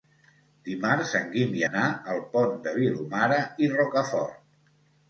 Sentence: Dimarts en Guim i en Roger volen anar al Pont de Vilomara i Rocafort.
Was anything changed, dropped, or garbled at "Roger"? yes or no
yes